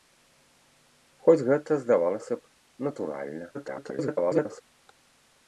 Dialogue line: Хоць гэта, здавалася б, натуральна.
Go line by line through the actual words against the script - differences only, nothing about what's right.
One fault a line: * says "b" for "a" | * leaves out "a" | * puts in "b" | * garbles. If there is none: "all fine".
* garbles